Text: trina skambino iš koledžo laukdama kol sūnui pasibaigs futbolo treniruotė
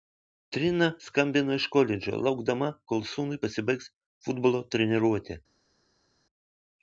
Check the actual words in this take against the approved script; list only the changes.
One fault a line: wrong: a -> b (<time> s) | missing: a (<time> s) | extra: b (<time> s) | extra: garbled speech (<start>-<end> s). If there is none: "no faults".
no faults